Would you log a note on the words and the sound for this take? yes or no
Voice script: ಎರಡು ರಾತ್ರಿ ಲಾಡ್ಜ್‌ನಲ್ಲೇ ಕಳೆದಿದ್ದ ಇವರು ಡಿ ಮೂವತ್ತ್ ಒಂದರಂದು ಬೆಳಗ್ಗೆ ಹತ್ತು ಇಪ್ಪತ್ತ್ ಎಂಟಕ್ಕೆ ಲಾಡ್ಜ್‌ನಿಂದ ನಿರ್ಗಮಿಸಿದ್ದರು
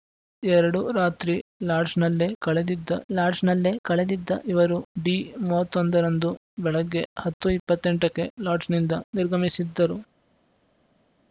yes